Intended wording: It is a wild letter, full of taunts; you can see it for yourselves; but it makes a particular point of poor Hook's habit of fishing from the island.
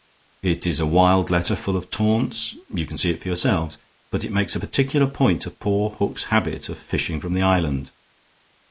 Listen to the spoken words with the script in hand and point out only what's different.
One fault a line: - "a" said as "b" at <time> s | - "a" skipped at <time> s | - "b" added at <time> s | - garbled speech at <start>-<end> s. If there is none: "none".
none